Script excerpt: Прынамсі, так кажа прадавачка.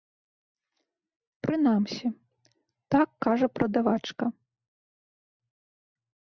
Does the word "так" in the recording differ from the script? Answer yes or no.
no